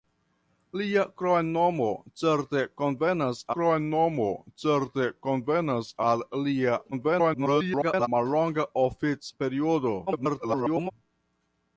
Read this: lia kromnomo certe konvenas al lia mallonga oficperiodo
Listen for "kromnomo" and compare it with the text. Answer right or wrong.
right